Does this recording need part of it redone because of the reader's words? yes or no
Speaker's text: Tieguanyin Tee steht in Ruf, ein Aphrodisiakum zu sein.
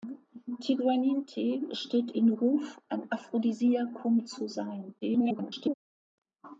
yes